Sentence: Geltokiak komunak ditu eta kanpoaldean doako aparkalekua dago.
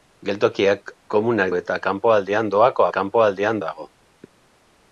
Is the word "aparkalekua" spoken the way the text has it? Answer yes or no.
no